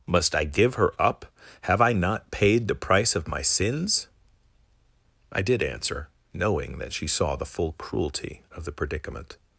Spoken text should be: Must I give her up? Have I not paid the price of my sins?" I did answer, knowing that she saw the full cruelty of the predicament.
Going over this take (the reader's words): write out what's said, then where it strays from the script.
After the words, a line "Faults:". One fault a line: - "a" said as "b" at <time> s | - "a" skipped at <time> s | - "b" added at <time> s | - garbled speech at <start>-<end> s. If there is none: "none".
Must I give her up? Have I not paid the price of my sins?" I did answer, knowing that she saw the full cruelty of the predicament.
Faults:
none